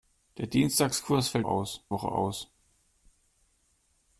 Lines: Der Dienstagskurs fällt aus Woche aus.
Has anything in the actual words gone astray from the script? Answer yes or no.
no